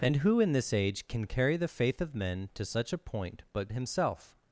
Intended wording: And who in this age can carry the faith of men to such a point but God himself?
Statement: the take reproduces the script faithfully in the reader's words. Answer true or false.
false